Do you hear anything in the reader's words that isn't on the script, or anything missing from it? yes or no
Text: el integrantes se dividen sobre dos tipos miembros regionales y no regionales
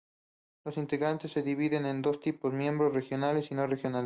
yes